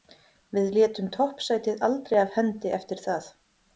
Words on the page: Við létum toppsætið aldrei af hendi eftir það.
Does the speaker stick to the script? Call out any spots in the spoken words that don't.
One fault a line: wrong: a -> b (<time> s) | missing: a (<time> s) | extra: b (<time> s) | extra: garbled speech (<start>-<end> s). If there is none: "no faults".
no faults